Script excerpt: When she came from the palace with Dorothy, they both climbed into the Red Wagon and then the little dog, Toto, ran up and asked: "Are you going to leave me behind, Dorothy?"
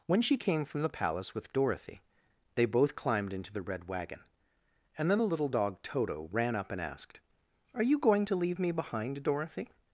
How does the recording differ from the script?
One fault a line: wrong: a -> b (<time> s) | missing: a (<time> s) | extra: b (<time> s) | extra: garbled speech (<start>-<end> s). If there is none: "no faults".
no faults